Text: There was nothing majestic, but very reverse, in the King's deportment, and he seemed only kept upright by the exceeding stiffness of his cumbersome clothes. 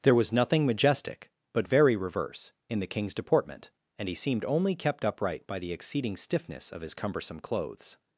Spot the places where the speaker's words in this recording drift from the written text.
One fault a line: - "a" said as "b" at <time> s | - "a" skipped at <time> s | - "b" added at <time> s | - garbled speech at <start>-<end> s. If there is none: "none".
none